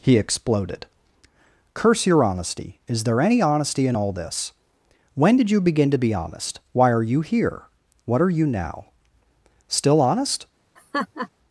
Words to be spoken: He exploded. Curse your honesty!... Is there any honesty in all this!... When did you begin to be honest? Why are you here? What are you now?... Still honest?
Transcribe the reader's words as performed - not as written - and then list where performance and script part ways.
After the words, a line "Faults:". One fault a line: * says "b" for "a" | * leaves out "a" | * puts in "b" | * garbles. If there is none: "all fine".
He exploded. Curse your honesty!... Is there any honesty in all this!... When did you begin to be honest? Why are you here? What are you now?... Still honest?
Faults:
all fine